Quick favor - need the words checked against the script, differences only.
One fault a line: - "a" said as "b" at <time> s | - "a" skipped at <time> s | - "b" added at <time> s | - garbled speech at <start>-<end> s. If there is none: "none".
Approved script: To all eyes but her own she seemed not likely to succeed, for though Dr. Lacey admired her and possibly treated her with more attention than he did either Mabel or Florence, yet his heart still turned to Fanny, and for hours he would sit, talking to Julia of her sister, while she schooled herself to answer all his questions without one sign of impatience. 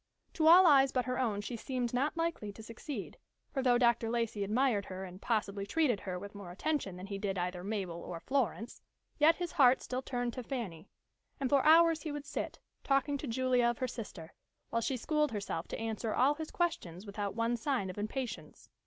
none